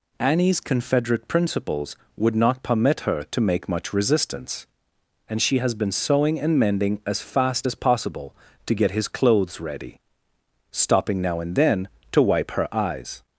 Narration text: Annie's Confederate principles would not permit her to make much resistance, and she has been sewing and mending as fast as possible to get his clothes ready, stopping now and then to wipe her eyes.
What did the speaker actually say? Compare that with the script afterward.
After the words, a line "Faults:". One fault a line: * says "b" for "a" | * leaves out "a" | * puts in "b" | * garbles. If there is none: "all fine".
Annie's Confederate principles would not permit her to make much resistance, and she has been sewing and mending as fast as possible to get his clothes ready, stopping now and then to wipe her eyes.
Faults:
all fine